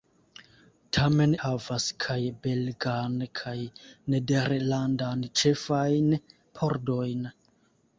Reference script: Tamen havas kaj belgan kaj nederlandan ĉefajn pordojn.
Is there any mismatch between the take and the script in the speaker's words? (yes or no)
no